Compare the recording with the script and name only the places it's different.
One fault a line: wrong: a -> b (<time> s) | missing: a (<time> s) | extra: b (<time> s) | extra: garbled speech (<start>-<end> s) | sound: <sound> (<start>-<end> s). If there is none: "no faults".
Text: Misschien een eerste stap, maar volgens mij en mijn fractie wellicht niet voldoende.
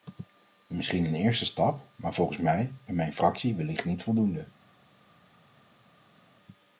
no faults